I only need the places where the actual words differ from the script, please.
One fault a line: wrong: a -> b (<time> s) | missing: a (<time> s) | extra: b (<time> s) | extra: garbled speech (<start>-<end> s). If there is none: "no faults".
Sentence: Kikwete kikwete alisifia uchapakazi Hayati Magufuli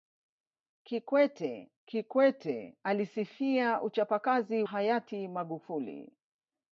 no faults